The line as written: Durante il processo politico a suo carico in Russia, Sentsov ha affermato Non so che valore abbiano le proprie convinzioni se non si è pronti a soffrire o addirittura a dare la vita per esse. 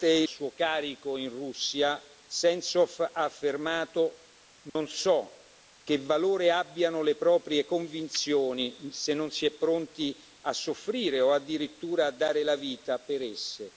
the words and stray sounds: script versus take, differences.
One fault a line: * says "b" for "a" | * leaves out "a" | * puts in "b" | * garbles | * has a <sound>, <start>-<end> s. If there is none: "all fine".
* leaves out "il processo politico"
* has a dropout, 4.7-4.8 s